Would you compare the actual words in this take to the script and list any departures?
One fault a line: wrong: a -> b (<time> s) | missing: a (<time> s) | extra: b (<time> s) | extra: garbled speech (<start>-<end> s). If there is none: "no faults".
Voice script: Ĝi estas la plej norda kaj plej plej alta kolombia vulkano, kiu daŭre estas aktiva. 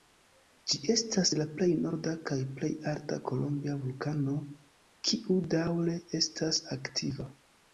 missing: plej (2.7 s)